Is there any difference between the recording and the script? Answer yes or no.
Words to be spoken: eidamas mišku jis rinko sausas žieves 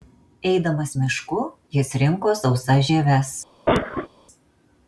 no